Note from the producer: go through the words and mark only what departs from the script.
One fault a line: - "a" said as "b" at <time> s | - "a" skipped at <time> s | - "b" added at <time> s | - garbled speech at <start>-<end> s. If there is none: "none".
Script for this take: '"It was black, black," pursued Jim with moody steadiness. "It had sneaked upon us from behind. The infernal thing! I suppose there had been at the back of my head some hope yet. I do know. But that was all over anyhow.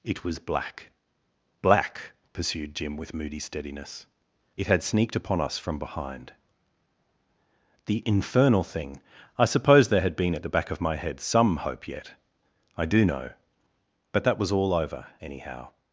none